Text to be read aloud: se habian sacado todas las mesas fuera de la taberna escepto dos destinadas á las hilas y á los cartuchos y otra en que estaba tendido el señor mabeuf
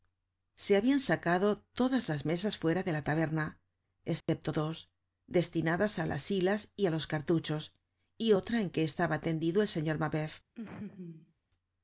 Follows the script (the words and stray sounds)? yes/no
no